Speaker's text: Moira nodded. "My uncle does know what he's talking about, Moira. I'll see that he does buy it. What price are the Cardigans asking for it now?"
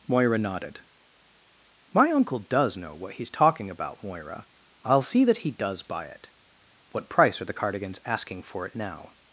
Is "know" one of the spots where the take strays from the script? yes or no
no